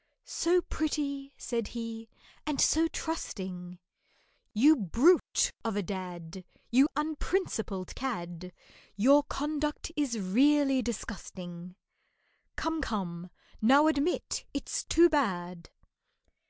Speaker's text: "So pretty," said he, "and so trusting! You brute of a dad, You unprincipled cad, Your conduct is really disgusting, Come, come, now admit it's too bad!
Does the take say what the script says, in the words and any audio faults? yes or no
yes